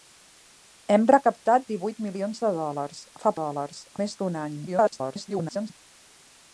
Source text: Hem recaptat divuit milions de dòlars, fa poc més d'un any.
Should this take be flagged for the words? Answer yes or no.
yes